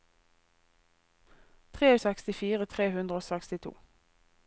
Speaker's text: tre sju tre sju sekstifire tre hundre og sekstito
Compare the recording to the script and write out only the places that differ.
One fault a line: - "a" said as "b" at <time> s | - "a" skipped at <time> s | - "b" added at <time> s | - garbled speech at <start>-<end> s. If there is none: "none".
- "sju tre sju" skipped at 1.9 s